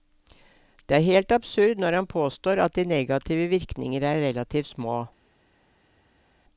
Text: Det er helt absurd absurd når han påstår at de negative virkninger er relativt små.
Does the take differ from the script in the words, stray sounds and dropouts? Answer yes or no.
yes